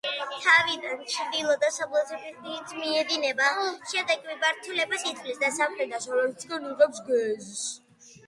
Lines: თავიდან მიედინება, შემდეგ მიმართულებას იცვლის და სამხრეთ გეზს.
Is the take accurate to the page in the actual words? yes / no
no